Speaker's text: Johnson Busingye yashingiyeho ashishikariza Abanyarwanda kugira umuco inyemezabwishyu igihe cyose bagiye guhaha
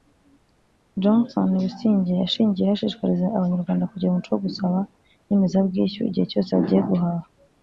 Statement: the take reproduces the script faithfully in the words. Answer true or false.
false